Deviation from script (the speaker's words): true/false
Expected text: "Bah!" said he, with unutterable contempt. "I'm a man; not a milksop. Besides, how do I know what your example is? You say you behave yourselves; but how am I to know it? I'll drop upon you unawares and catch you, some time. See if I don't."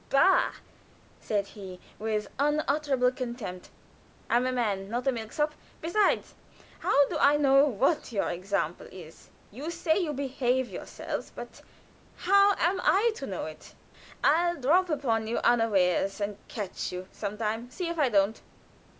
false